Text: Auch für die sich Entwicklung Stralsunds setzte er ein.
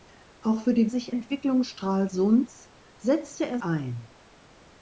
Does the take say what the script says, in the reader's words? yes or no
yes